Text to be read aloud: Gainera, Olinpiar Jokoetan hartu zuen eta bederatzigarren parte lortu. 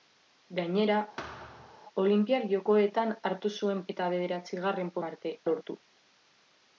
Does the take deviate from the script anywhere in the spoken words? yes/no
no